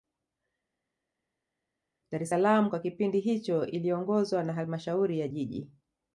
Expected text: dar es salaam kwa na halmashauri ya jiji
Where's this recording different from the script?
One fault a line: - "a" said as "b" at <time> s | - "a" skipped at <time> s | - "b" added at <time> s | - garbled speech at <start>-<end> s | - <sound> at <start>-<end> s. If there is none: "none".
- "kipindi hicho iliongozwa" added at 2.8 s